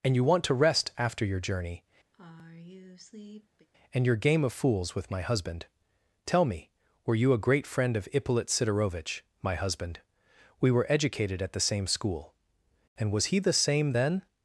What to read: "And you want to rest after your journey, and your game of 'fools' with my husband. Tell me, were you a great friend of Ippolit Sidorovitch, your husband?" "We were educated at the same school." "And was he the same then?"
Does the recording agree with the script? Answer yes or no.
no